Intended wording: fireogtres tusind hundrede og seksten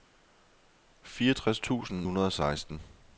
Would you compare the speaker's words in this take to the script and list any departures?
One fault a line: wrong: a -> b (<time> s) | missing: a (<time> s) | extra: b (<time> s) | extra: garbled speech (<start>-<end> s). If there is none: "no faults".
no faults